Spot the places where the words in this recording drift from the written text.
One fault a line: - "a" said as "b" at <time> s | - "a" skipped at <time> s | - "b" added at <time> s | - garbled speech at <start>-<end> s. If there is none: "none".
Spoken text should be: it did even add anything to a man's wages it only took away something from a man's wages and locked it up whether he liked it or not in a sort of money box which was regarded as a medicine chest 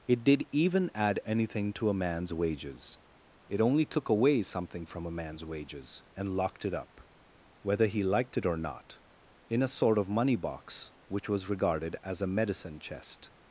none